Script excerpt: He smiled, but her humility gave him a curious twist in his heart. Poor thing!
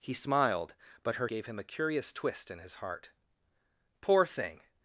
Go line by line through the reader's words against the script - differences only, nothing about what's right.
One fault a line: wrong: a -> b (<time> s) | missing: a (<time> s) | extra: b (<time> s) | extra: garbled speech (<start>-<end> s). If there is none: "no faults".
missing: humility (1.3 s)